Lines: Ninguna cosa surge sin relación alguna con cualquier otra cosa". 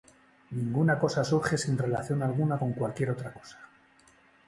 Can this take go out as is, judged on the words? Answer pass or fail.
pass